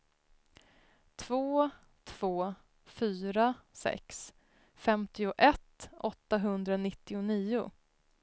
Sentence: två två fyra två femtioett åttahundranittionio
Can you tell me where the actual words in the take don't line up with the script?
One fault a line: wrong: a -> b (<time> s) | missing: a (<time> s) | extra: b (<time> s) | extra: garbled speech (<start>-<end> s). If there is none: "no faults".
wrong: två -> sex (3.7 s)